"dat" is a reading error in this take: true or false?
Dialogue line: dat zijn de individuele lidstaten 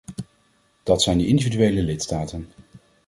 false